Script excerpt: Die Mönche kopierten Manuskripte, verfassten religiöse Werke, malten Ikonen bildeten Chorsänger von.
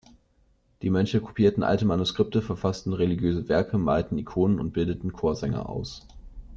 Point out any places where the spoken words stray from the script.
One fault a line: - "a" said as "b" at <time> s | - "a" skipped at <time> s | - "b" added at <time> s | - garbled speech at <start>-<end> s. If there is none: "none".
- "alte" added at 1.6 s
- "und" added at 4.6 s
- "von" said as "aus" at 5.7 s